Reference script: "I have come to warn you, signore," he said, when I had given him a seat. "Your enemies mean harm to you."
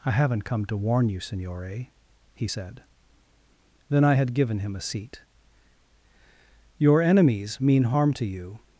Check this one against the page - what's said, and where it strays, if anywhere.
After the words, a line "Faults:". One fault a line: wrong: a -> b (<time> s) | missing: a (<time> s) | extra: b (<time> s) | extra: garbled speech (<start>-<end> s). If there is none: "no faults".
"I haven't come to warn you, signore," he said, then I had given him a seat. "Your enemies mean harm to you."
Faults:
wrong: have -> haven't (0.1 s)
wrong: when -> then (3.9 s)